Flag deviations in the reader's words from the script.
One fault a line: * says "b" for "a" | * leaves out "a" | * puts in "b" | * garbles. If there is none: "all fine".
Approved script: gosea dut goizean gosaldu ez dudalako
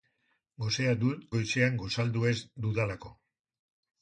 all fine